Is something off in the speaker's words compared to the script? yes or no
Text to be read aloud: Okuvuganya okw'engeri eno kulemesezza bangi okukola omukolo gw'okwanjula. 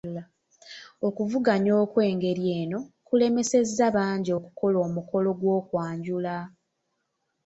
no